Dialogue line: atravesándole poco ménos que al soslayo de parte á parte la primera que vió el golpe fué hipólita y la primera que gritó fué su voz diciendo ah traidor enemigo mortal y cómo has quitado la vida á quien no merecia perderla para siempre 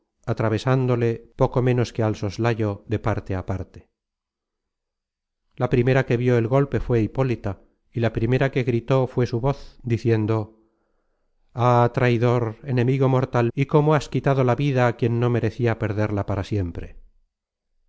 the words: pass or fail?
pass